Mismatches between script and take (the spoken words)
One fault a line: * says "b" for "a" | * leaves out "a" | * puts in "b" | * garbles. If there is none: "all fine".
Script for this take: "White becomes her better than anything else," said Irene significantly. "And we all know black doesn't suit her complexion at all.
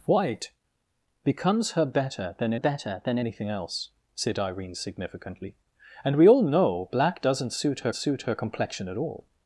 * puts in "better than"
* puts in "suit her"